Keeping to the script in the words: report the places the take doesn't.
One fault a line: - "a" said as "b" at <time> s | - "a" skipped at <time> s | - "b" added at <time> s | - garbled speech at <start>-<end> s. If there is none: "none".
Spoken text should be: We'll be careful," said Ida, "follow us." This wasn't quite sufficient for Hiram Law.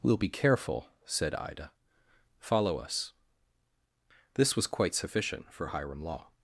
- "wasn't" said as "was" at 4.6 s